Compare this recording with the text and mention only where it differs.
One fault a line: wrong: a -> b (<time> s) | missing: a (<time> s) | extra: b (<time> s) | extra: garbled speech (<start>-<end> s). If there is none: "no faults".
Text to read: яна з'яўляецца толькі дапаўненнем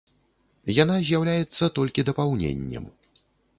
no faults